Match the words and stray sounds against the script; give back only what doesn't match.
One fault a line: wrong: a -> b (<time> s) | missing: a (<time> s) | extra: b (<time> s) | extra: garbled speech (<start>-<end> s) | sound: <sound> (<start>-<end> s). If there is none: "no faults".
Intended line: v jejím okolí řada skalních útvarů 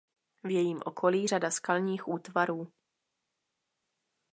no faults